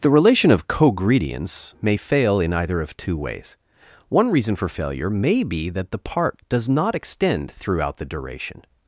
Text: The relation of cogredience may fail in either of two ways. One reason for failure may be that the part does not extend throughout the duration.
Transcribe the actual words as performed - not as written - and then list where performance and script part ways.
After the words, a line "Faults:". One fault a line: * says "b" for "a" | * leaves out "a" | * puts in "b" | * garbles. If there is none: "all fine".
The relation of cogredience may fail in either of two ways. One reason for failure may be that the part does not extend throughout the duration.
Faults:
all fine